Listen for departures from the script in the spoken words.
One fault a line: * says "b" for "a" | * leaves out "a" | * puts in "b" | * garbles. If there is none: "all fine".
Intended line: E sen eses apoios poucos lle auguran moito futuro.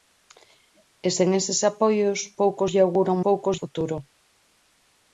* says "poucos" for "moito"